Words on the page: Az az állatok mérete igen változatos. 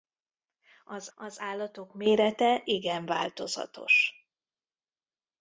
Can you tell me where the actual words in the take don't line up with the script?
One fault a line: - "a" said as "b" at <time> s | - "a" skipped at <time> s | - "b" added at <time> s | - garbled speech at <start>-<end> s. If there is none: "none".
none